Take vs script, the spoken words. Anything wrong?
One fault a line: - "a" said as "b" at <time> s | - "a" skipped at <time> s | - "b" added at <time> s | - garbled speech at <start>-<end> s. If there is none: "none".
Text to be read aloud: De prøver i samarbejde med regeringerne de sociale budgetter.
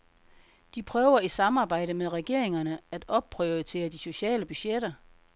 - "at opprioritere" added at 2.9 s